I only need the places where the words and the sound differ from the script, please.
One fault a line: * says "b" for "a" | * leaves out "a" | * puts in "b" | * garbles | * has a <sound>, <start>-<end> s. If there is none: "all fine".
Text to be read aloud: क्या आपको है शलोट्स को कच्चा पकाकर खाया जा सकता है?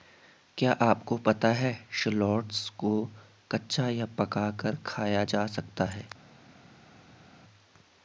* puts in "पता"
* puts in "या"